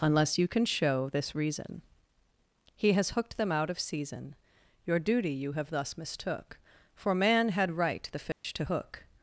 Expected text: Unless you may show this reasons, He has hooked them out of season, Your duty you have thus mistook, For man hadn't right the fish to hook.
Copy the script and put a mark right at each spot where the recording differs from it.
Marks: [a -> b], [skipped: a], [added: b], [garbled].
Unless you [may -> can] show this [reasons, -> reason] He has hooked them out of season, Your duty you have thus mistook, For man [hadn't -> had] right the fish to hook.